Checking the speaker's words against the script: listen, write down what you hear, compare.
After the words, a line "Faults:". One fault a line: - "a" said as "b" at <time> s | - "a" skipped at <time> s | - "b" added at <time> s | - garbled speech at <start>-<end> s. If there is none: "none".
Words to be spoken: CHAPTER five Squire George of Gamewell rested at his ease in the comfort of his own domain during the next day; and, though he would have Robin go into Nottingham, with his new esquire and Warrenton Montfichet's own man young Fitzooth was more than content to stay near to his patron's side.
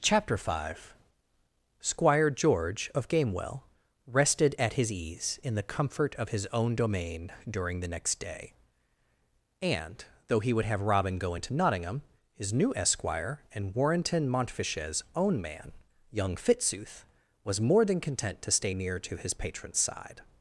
CHAPTER five Squire George of Gamewell rested at his ease in the comfort of his own domain during the next day; and, though he would have Robin go into Nottingham, his new esquire and Warrenton Montfichet's own man young Fitzooth was more than content to stay near to his patron's side.
Faults:
- "with" skipped at 12.0 s